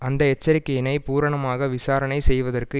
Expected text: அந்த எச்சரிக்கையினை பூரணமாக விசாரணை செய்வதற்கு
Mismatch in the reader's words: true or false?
false